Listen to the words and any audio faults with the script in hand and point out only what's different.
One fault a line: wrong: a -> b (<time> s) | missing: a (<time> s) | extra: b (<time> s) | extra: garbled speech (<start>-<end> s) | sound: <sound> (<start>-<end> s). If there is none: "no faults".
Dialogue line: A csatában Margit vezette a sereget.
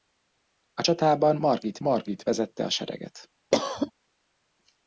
extra: Margit (1.8 s)
sound: cough (3.5-3.9 s)